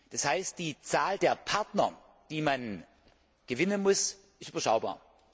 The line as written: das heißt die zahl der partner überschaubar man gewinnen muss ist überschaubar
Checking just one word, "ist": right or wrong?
right